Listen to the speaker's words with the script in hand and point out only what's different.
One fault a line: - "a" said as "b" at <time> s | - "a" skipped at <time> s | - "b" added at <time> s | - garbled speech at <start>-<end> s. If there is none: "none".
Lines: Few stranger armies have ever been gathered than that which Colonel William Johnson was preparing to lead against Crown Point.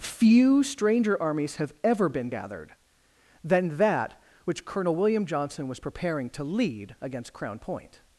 none